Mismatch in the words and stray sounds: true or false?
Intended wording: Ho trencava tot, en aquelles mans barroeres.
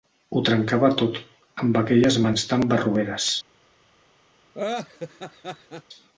true